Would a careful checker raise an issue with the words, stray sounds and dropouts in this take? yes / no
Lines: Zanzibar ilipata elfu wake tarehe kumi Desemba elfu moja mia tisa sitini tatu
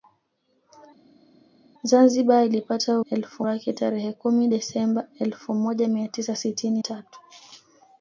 no